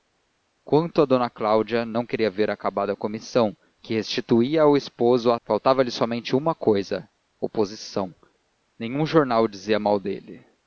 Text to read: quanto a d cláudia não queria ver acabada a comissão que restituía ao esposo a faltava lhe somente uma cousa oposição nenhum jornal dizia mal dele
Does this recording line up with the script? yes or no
yes